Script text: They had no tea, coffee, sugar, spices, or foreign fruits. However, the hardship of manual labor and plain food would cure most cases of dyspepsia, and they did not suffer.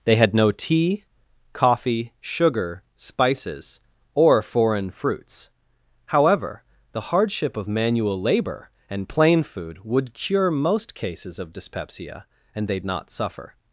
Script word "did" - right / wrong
wrong